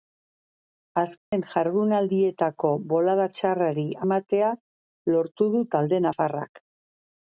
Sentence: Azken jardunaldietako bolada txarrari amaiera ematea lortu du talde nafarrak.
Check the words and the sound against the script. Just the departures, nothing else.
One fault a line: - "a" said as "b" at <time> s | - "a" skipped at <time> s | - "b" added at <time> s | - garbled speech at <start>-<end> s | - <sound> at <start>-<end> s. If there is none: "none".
- dropout at 1.2-1.3 s
- "amaiera" skipped at 3.9 s